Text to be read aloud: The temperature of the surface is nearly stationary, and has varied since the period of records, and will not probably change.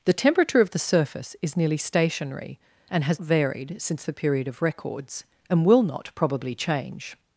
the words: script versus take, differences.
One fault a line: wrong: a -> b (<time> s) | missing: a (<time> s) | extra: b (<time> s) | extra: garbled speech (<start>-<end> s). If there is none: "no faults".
no faults